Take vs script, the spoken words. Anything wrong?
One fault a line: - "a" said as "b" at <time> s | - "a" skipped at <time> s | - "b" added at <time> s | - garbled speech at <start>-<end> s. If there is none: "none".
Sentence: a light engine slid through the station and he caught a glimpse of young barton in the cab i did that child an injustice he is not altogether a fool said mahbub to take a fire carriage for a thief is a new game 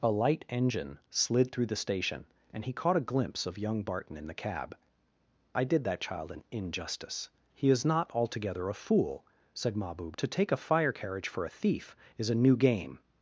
none